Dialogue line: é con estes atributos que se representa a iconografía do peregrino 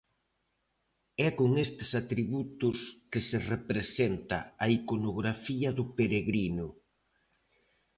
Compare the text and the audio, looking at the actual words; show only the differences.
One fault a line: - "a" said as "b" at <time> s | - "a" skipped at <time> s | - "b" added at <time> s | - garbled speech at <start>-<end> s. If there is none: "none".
none